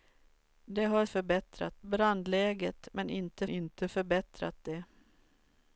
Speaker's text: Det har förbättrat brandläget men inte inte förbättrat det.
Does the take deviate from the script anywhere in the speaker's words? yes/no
no